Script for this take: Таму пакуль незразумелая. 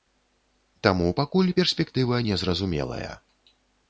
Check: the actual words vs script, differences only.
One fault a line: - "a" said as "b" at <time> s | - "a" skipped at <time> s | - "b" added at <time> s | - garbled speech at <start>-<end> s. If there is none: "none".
- "перспектыва" added at 1.6 s